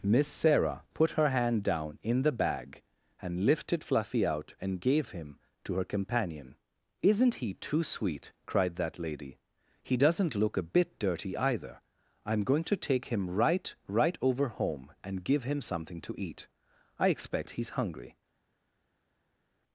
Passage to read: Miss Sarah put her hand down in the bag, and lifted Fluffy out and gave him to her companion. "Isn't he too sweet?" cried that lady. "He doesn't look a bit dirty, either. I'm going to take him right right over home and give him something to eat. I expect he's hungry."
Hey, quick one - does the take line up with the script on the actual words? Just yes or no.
yes